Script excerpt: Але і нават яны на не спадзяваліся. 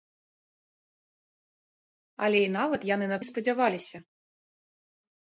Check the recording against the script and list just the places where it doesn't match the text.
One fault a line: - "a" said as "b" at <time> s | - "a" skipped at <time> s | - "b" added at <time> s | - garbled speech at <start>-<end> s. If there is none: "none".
none